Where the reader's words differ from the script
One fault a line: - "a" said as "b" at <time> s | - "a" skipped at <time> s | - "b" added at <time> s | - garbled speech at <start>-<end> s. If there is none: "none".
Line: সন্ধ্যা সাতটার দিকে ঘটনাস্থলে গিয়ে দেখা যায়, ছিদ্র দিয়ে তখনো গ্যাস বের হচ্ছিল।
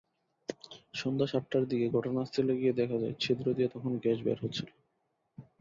none